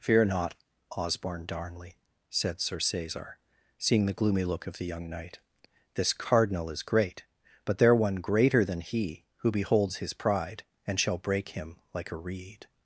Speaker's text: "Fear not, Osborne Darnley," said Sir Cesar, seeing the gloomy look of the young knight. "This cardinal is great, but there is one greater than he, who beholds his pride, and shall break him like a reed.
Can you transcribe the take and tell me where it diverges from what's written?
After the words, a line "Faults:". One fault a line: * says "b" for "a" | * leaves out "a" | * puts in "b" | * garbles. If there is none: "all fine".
"Fear not, Osborne Darnley," said Sir Cesar, seeing the gloomy look of the young knight. "This cardinal is great, but there one greater than he, who beholds his pride, and shall break him like a reed.
Faults:
* leaves out "is"